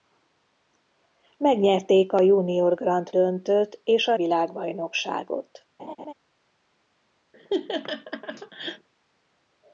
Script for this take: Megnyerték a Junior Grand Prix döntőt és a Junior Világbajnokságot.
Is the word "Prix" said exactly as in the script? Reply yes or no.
no